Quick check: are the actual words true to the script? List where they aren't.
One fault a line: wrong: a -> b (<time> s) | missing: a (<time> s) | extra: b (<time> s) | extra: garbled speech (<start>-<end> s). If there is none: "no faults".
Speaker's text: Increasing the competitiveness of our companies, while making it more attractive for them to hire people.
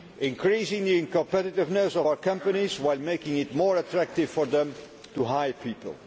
no faults